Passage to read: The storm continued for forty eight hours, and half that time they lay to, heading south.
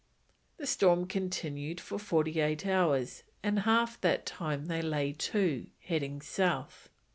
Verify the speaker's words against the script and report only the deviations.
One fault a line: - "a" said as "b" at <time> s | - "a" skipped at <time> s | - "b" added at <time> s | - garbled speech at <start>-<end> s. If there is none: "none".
none